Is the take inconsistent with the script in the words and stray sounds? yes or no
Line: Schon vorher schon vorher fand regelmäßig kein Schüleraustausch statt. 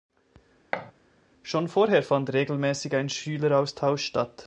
yes